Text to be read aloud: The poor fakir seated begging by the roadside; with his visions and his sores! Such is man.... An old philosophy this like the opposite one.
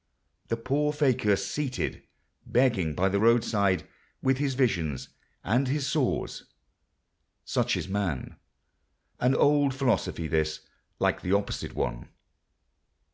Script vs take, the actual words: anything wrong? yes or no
no